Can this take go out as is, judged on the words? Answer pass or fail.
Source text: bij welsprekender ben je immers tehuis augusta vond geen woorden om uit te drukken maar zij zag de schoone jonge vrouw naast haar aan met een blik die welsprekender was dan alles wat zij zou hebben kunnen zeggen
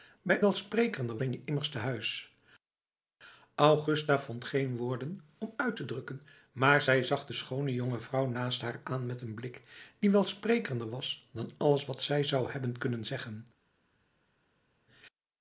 pass